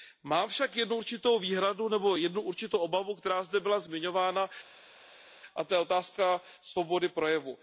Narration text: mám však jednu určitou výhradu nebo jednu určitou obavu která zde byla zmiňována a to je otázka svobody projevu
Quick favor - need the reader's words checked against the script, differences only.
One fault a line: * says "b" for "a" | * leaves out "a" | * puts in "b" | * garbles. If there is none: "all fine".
all fine